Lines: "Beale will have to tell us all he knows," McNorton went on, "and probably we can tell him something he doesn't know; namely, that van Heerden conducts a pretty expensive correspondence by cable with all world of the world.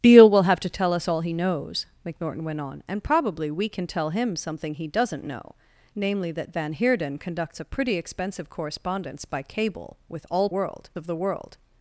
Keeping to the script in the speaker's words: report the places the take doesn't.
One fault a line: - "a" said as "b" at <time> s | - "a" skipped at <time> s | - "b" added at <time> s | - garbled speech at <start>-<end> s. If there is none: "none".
none